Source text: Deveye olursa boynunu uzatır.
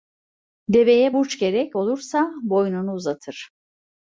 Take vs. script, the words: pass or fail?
fail